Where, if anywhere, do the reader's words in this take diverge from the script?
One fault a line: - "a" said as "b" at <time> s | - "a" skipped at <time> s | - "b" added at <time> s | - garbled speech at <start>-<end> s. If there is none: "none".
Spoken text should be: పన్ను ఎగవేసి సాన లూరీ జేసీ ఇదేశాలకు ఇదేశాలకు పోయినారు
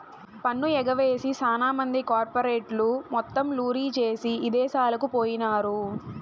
- "మంది కార్పెరేట్లు మొత్తం" added at 1.7 s
- "ఇదేశాలకు" skipped at 5.1 s